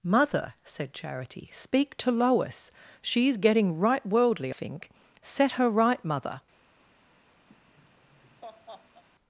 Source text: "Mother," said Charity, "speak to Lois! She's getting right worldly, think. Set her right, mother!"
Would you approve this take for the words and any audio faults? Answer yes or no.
no